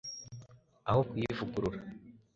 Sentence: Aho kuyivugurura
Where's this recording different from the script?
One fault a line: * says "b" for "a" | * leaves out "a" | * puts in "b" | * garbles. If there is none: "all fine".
all fine